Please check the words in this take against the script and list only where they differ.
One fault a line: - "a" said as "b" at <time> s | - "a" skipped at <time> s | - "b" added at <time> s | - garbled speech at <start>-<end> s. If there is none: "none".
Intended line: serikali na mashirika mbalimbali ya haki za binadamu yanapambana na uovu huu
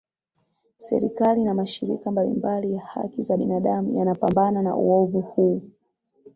none